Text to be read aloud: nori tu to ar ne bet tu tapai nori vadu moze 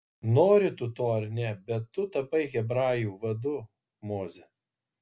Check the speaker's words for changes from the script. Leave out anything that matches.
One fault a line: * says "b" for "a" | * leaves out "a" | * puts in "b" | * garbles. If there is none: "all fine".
* says "hebrajų" for "nori"